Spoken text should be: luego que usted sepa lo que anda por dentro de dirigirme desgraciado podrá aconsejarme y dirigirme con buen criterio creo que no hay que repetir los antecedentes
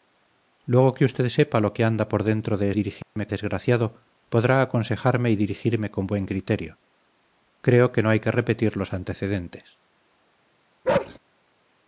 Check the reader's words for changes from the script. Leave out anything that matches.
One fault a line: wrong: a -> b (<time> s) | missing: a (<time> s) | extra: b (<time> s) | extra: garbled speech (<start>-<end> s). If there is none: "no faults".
no faults